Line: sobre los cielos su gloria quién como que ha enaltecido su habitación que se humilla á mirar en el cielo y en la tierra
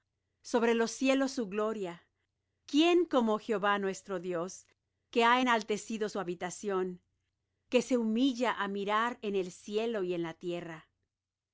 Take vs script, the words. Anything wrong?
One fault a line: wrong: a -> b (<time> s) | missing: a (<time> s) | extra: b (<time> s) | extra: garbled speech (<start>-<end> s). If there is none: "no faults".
extra: jehová nuestro dios (3.4 s)